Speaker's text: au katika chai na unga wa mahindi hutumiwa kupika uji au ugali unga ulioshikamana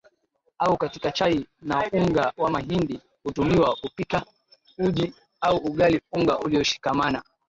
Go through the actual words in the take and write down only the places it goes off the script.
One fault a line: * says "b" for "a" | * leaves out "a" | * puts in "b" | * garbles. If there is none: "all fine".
all fine